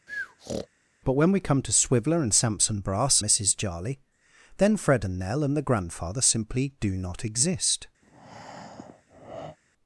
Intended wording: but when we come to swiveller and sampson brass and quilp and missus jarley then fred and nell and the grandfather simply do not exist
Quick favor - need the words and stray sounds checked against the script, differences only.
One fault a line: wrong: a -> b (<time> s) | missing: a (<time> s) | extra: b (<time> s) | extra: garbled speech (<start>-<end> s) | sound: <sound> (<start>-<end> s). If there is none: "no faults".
sound: breath (0.1-0.7 s)
missing: and quilp and (3.2 s)
sound: breath (8.0-9.6 s)